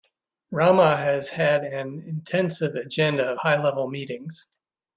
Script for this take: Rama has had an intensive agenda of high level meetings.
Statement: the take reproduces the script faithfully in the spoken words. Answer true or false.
true